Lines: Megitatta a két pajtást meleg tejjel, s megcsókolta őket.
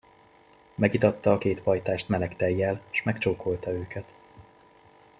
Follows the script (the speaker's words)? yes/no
yes